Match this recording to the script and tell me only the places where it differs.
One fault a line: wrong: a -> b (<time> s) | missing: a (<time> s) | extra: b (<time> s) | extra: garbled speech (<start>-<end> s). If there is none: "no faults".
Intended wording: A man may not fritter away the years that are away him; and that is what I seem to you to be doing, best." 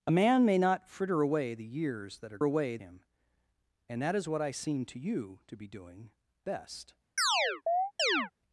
no faults